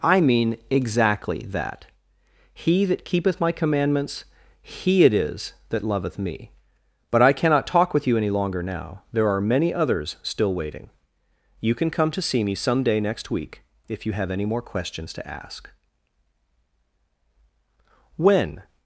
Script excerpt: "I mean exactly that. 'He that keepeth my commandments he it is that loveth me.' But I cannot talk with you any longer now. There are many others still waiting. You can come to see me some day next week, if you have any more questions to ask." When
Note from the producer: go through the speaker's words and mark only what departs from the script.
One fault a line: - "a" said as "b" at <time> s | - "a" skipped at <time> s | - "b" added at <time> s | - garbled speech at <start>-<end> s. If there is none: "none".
none